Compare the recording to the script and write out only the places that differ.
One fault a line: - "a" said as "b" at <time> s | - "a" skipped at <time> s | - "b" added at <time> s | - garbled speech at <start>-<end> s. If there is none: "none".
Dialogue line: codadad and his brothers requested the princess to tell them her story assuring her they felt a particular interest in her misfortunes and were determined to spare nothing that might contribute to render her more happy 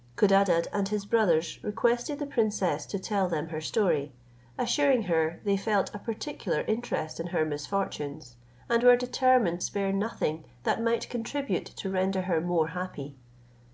- "to" skipped at 9.6 s